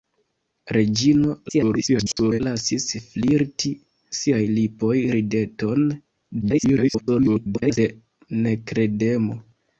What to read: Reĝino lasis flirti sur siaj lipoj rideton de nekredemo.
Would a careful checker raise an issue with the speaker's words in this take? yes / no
yes